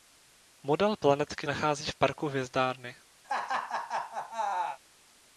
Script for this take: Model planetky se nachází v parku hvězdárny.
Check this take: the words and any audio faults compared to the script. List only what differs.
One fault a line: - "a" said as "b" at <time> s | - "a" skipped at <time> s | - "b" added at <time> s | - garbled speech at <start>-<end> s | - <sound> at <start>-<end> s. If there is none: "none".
- "se" skipped at 1.5 s
- laugh at 3.2-4.8 s